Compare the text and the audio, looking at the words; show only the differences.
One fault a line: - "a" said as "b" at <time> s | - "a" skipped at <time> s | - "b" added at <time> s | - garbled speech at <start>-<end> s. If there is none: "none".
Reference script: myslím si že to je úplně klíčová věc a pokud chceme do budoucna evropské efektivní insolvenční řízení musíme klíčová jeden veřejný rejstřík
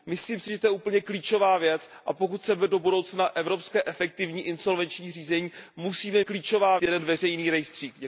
none